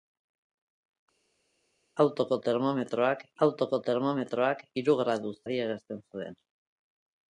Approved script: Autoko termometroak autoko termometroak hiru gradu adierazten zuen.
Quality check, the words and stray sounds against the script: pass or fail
pass